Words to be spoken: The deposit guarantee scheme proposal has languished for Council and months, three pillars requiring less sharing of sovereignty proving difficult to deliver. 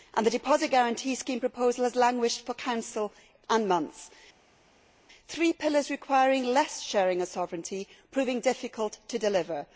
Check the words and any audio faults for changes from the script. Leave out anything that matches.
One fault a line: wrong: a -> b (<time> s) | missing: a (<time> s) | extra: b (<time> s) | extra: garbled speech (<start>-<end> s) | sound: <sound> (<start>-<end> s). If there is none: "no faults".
no faults